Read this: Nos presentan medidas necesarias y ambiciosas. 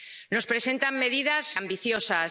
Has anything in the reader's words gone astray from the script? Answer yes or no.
yes